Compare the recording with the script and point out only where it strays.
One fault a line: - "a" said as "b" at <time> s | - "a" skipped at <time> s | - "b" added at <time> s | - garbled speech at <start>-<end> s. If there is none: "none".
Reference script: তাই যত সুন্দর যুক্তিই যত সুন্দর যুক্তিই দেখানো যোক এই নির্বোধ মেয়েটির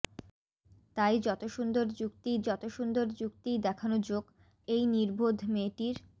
none